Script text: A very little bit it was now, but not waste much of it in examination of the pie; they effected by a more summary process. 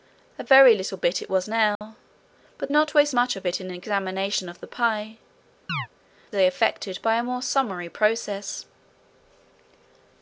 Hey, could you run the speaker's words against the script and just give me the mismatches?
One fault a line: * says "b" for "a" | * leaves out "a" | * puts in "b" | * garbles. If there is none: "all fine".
all fine